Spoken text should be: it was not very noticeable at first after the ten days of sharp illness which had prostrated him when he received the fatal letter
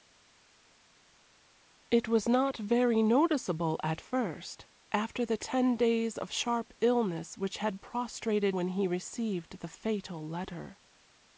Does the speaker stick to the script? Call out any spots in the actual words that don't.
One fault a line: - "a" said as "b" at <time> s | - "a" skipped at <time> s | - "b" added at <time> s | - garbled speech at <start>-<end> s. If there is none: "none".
- "him" skipped at 8.5 s